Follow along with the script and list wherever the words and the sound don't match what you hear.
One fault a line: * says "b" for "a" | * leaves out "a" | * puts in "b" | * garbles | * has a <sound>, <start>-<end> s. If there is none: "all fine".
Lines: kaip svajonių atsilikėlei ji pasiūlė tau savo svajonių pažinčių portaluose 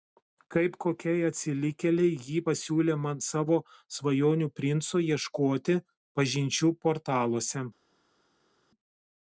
* says "kokiai" for "svajonių"
* says "man" for "tau"
* puts in "princo ieškoti"